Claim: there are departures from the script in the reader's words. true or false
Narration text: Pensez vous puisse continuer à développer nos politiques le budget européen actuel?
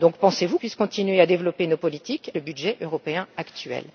false